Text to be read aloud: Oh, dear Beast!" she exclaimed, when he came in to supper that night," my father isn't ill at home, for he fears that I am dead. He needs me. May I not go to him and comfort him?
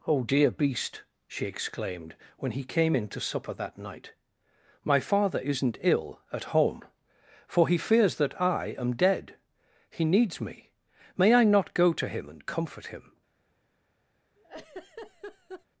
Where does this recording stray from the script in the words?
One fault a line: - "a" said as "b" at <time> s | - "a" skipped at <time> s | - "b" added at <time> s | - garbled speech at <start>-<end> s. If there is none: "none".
none